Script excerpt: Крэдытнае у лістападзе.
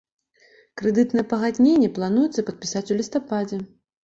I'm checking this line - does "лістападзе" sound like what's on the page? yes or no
yes